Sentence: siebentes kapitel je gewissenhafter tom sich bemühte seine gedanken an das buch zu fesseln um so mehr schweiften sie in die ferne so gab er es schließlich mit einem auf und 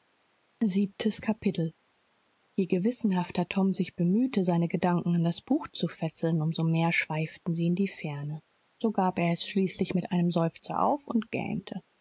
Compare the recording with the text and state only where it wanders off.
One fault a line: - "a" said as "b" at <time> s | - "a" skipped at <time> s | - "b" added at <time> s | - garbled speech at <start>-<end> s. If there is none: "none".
- "seufzer" added at 10.3 s